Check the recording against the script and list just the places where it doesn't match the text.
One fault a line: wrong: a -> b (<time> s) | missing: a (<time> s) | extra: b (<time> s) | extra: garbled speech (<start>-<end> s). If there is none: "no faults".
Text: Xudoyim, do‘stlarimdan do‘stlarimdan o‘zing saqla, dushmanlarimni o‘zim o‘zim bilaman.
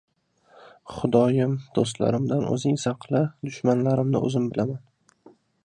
missing: do‘stlarimdan (2.5 s)
missing: o‘zim (4.5 s)